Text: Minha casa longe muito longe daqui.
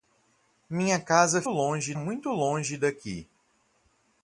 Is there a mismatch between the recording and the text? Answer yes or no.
no